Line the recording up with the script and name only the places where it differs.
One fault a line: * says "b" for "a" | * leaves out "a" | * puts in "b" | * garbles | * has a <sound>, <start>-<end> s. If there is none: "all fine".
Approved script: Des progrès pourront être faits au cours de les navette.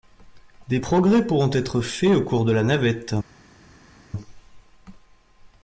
* says "la" for "les"